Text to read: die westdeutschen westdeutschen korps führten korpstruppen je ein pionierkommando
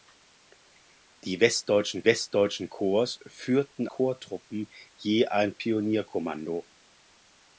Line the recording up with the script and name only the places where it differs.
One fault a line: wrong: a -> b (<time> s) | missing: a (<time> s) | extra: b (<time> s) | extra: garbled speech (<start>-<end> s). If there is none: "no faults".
no faults